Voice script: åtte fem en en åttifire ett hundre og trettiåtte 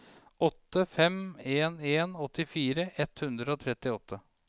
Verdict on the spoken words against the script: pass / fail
pass